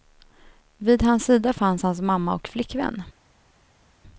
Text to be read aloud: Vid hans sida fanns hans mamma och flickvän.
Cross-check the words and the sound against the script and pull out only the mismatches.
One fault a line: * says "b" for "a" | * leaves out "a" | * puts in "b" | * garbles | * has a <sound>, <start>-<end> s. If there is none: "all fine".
all fine